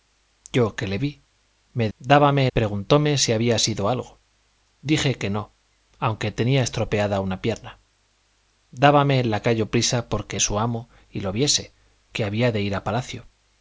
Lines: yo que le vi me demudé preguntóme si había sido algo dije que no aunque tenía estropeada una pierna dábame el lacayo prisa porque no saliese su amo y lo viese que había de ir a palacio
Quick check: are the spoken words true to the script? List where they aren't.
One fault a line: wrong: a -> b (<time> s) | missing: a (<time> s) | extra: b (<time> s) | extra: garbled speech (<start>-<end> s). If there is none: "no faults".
wrong: demudé -> dábame (2.0 s)
missing: no saliese (10.4 s)